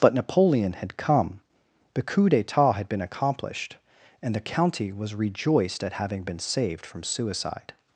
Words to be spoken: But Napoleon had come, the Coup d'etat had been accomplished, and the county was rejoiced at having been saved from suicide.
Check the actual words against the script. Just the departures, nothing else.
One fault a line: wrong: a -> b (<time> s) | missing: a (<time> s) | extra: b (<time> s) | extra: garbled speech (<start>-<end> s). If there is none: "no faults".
no faults